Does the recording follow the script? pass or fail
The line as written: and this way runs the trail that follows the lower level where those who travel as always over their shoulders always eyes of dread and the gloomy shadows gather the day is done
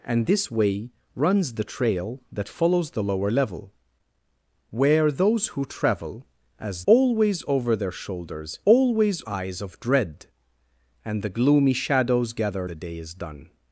pass